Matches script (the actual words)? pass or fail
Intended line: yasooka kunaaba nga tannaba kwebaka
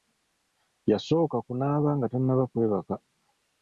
pass